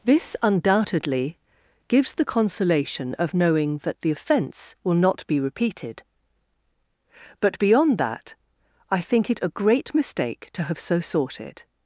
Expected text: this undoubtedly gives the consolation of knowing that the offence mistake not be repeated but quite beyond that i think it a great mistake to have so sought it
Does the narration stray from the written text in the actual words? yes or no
yes